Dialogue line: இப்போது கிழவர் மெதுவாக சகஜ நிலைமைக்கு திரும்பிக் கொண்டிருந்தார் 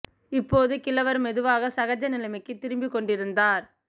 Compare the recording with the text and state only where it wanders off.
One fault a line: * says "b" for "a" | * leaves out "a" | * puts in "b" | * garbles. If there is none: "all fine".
all fine